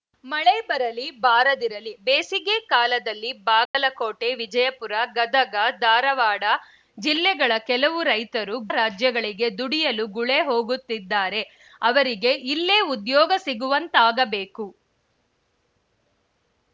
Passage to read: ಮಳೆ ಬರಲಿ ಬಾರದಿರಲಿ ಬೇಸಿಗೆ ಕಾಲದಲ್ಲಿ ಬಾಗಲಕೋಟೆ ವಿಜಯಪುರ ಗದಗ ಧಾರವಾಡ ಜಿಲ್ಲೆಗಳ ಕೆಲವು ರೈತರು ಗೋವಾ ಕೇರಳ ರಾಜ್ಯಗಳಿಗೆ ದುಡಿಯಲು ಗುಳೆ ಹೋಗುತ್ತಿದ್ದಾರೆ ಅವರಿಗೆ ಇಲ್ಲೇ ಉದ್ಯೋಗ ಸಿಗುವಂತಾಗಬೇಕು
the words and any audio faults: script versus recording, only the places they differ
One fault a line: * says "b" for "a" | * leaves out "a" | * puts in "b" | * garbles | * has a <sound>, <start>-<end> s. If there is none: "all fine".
* has a dropout, 3.7-3.7 s
* leaves out "ಗೋವಾ ಕೇರಳ"